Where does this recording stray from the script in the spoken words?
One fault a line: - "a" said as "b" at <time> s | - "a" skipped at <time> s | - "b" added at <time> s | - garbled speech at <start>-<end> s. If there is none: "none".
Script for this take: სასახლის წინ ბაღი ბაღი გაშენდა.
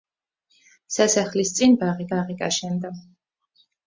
none